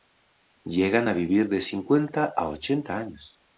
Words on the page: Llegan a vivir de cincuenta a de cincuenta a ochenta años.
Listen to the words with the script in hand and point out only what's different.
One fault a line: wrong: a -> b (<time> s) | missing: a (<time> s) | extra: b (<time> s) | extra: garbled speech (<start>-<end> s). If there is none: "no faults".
missing: de cincuenta a (2.5 s)